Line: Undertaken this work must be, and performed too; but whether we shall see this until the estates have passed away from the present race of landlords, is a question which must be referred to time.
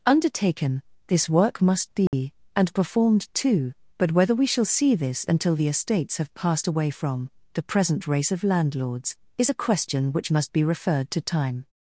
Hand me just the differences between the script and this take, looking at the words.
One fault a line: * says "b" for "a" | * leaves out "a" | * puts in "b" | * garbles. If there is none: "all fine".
all fine